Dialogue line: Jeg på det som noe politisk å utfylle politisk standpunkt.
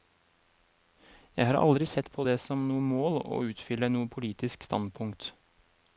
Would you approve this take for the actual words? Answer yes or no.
no